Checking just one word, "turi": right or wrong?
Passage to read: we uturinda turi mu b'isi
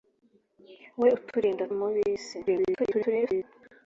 wrong